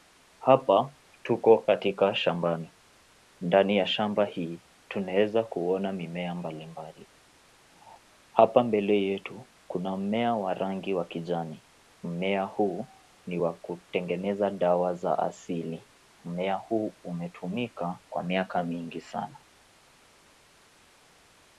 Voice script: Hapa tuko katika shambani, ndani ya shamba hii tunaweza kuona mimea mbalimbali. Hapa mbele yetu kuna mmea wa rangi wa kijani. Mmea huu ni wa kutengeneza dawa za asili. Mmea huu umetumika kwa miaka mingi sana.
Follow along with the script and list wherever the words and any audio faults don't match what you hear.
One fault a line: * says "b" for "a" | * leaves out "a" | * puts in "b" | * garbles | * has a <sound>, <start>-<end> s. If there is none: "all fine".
all fine